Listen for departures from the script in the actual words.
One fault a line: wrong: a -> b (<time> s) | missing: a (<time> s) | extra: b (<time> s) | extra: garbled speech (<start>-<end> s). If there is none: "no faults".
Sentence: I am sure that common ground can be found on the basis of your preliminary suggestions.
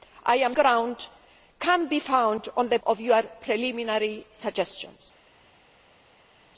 missing: sure that common (0.6 s)
missing: basis (2.8 s)